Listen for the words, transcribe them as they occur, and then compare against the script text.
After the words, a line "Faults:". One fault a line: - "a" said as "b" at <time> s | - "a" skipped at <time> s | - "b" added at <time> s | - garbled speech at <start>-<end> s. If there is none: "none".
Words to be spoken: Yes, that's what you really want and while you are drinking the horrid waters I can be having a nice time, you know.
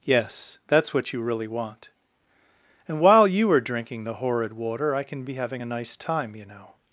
Yes, that's what you really want and while you are drinking the horrid water I can be having a nice time, you know.
Faults:
- "waters" said as "water" at 4.5 s